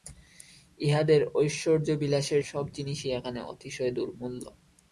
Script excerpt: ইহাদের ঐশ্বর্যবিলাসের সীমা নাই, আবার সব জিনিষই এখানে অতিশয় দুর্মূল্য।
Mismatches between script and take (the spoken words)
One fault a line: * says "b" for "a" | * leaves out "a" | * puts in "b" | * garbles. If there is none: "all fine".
* leaves out "সীমা নাই আবার"